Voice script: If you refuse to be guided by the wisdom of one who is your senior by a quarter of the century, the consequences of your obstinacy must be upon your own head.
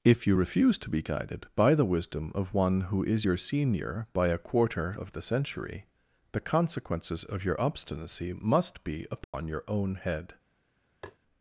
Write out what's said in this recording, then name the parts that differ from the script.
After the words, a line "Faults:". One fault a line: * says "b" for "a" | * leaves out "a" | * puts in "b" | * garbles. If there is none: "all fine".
If you refuse to be guided by the wisdom of one who is your senior by a quarter of the century, the consequences of your obstinacy must be upon your own head.
Faults:
all fine